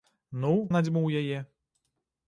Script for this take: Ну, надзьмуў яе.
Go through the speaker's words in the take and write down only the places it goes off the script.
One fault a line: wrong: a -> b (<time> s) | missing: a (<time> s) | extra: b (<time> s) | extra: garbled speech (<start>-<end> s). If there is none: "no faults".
no faults